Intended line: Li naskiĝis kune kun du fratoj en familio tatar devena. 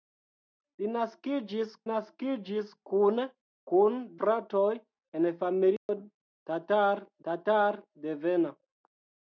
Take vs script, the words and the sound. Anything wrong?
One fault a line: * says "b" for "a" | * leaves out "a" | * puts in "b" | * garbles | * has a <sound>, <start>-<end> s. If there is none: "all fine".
* puts in "naskiĝis"
* leaves out "du"
* has a dropout, 5.8-5.9 s
* puts in "tatar"